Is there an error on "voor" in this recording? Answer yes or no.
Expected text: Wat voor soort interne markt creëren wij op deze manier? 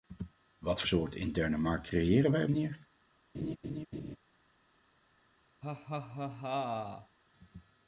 yes